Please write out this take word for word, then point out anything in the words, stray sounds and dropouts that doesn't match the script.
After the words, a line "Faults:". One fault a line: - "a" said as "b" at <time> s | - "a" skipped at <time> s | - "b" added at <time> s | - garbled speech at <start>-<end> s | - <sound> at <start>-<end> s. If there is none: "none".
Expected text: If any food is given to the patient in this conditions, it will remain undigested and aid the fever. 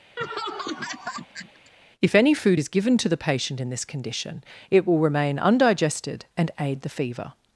If any food is given to the patient in this condition, it will remain undigested and aid the fever.
Faults:
- laugh at 0.2-1.7 s
- "conditions" said as "condition" at 3.8 s